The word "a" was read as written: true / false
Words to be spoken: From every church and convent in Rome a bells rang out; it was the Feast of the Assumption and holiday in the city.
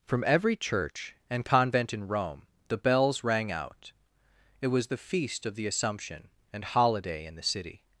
false